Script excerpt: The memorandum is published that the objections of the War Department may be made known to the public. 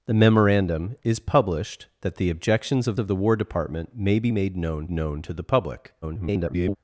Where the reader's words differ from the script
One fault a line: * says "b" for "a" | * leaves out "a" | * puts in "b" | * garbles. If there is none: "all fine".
* puts in "of"
* puts in "known"
* garbles